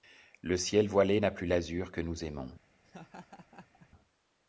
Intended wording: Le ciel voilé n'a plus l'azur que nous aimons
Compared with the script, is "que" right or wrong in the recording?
right